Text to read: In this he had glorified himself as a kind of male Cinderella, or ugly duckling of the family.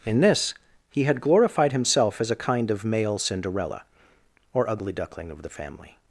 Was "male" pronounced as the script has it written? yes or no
yes